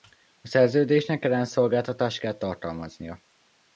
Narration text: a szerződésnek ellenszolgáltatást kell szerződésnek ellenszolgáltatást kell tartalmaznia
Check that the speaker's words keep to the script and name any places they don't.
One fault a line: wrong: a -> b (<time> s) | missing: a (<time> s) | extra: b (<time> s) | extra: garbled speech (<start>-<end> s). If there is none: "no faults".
missing: szerződésnek ellenszolgáltatást kell (2.3 s)